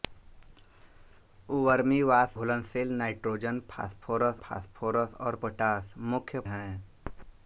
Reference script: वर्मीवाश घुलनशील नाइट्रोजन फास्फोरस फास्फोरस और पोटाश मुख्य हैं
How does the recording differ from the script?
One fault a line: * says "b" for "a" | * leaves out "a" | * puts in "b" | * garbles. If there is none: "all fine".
all fine